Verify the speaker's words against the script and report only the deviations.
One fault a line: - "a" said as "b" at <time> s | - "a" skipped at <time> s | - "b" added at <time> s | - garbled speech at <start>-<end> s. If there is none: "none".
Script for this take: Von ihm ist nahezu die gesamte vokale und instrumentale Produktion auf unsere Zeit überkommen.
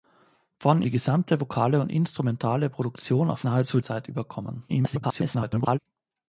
- "ihm ist nahezu" skipped at 0.8 s
- "unsere" said as "nahezu" at 3.4 s
- garbled speech at 4.7-5.8 s